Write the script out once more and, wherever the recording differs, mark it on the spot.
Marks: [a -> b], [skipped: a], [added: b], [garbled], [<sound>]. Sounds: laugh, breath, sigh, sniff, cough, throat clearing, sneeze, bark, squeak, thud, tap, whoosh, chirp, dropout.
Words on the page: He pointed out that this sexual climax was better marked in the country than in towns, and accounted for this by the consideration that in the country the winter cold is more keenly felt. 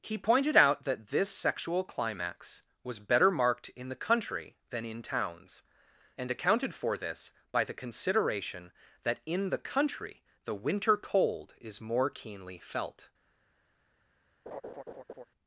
He pointed out that this sexual climax was better marked in the country than in towns, and accounted for this by the consideration that in the country the winter cold is more keenly felt. [laugh]